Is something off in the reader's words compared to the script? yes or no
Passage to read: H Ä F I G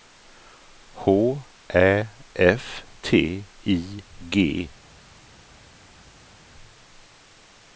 yes